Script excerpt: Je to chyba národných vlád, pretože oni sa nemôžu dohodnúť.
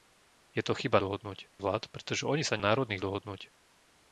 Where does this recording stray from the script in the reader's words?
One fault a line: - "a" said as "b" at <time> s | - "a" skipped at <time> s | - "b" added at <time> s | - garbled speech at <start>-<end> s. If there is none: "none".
- "národných" said as "dohodnúť" at 1.0 s
- "nemôžu" said as "národných" at 2.6 s